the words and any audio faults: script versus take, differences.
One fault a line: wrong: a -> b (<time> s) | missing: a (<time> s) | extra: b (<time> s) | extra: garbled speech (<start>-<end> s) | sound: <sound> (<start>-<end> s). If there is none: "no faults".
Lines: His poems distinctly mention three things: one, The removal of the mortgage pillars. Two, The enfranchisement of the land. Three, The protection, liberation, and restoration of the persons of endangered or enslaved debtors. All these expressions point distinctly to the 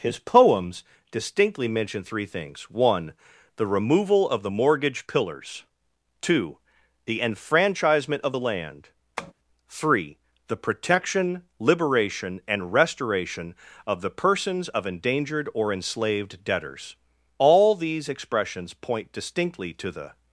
sound: tap (9.2-9.3 s)